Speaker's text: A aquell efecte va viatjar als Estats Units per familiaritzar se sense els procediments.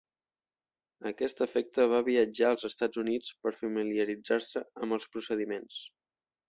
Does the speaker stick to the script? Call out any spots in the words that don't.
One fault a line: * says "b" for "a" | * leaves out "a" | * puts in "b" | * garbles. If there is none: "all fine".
* says "aquest" for "aquell"
* says "amb" for "sense"